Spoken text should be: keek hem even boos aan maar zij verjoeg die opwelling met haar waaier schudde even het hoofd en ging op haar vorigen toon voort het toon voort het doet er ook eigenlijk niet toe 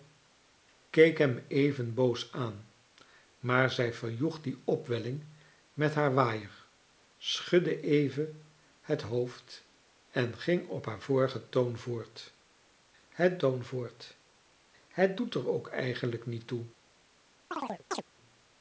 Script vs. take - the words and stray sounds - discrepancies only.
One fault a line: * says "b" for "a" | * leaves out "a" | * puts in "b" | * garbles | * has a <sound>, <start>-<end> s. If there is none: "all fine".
* has a chirp, 17.5-18.0 s